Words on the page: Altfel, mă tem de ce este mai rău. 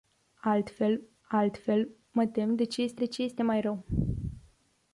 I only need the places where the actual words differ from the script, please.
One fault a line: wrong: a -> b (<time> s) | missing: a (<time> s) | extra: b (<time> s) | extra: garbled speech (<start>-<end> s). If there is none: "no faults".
extra: altfel (1.3 s)
extra: de ce este (3.0 s)